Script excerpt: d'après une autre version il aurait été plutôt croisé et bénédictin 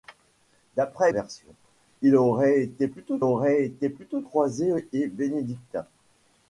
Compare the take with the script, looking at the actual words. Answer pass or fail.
fail